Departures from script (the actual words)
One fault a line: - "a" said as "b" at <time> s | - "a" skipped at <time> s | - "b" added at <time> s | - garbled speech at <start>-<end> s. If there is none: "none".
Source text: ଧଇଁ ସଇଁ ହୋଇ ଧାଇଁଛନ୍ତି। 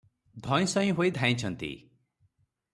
none